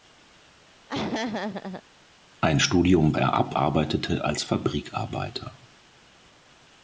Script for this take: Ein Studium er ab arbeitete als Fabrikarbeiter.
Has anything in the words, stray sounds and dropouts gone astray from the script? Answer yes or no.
yes